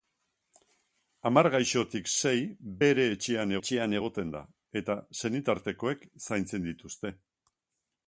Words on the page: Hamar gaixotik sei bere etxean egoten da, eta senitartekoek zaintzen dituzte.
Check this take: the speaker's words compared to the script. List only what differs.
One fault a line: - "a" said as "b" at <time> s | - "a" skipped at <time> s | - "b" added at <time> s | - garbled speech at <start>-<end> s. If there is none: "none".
- "etxean" added at 3.6 s